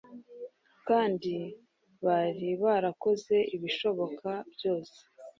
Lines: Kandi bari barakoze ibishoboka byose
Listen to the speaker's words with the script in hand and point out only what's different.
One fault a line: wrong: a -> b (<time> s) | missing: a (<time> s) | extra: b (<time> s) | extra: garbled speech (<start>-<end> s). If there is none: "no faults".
no faults